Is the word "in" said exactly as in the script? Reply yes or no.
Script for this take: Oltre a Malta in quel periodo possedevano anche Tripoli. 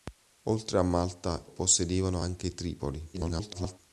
no